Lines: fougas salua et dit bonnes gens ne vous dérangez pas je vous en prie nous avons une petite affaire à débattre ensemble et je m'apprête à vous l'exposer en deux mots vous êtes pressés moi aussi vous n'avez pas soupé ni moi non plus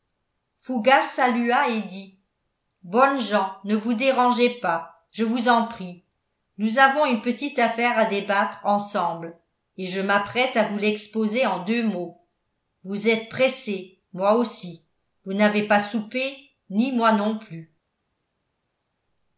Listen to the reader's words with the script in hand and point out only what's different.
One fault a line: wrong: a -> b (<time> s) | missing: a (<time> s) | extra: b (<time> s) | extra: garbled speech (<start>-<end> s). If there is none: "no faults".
no faults